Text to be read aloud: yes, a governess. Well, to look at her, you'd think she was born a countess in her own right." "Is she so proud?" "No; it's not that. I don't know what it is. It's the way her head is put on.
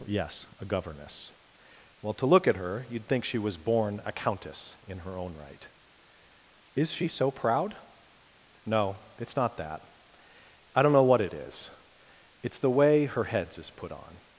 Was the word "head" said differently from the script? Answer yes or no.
yes